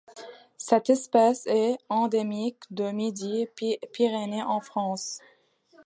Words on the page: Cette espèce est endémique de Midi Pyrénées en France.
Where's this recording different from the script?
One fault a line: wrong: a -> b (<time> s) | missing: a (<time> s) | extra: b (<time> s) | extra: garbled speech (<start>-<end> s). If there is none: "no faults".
no faults